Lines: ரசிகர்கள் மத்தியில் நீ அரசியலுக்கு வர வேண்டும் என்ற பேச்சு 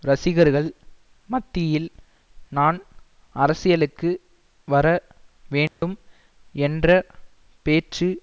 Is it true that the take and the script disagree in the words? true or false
true